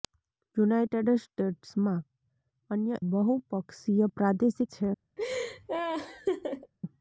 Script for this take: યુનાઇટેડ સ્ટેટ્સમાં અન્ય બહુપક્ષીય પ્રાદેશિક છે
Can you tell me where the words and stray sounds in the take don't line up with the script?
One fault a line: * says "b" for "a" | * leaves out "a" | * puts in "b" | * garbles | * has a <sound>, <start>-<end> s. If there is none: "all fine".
* has a laugh, 5.2-6.7 s